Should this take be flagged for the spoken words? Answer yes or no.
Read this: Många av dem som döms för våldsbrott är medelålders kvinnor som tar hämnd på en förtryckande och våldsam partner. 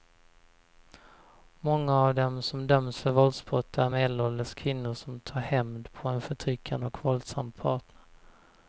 no